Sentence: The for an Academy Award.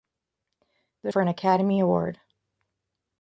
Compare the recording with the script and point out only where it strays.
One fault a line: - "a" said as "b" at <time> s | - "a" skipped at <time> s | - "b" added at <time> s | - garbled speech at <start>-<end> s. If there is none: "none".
none